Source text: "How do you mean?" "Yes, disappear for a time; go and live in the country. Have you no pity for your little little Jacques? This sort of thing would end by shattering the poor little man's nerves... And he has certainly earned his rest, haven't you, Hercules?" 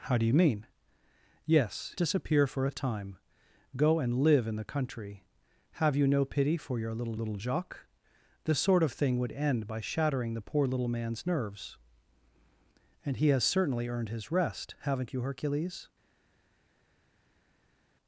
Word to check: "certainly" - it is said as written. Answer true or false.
true